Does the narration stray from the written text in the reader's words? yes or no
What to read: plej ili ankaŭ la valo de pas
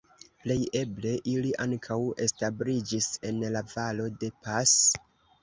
yes